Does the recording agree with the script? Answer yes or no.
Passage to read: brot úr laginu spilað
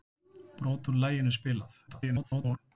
no